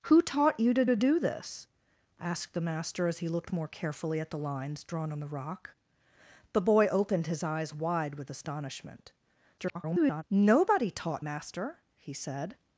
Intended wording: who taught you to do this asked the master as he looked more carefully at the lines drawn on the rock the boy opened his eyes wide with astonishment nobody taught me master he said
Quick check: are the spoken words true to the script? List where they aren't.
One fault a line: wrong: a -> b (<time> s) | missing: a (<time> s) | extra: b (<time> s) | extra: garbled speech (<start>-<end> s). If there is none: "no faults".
extra: to (0.8 s)
extra: garbled speech (9.6-10.2 s)
missing: me (11.2 s)